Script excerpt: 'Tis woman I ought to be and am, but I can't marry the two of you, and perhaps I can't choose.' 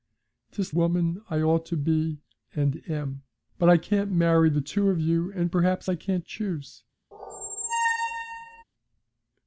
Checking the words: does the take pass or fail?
pass